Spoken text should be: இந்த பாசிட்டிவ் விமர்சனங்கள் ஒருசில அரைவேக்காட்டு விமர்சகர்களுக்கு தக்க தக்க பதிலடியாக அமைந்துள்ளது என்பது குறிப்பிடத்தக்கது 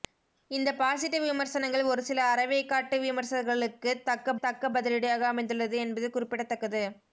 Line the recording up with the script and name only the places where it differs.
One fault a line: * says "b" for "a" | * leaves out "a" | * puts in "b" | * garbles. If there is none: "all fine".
all fine